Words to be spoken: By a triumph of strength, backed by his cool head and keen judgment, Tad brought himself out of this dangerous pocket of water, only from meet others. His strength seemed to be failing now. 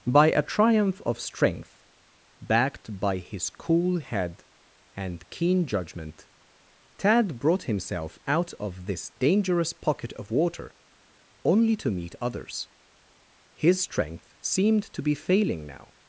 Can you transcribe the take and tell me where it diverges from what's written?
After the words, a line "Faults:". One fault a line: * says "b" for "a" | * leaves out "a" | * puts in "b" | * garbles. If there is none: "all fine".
By a triumph of strength, backed by his cool head and keen judgment, Tad brought himself out of this dangerous pocket of water, only to meet others. His strength seemed to be failing now.
Faults:
* says "to" for "from"